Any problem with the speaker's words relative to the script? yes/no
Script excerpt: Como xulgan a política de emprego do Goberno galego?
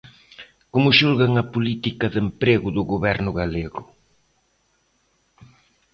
no